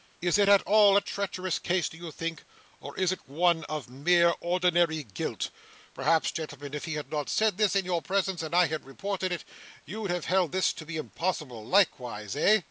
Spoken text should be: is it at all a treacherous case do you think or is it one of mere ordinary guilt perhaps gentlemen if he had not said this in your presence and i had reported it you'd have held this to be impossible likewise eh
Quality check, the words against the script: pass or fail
pass